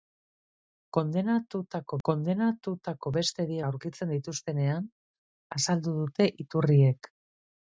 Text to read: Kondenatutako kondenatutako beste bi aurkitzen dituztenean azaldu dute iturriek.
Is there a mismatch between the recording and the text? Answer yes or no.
no